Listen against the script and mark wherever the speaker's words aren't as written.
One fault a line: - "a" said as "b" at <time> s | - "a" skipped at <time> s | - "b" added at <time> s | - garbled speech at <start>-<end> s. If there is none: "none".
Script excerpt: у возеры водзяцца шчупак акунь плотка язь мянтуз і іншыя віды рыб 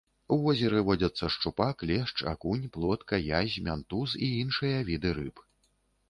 - "лешч" added at 1.9 s